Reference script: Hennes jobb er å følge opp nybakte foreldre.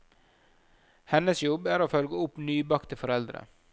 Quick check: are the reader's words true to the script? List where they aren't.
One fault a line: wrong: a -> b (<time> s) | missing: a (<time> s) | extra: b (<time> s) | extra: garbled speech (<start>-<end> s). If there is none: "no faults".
no faults